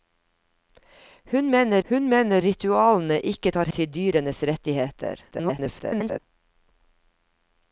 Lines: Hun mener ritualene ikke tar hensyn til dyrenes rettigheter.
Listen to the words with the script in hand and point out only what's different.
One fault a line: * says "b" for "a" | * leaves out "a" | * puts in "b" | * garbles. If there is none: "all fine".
* puts in "hun mener"
* leaves out "hensyn"
* garbles